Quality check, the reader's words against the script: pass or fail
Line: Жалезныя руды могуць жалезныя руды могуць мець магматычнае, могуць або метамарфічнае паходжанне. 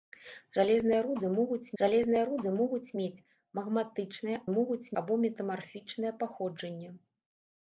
pass